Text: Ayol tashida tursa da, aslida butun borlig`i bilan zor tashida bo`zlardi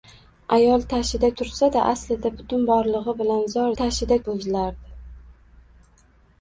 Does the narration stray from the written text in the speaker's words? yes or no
no